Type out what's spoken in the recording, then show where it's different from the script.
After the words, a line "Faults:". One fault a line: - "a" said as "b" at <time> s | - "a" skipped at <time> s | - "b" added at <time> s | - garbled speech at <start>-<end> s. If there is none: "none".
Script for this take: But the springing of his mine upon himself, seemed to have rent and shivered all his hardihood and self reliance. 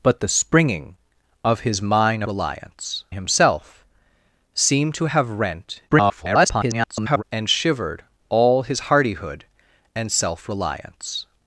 But the springing of his mine reliance himself, seemed to have rent [garbled] and shivered all his hardihood and self reliance.
Faults:
- "upon" said as "reliance" at 2.3 s
- garbled speech at 5.9-7.2 s